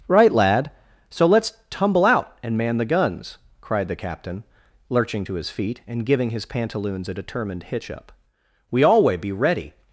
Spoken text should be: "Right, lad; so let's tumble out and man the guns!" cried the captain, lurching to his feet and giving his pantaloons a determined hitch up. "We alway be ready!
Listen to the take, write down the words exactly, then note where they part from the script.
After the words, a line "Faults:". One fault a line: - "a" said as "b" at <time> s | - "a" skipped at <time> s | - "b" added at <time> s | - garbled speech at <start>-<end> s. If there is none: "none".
"Right, lad; so let's tumble out and man the guns!" cried the captain, lurching to his feet and giving his pantaloons a determined hitch up. "We alway be ready!
Faults:
none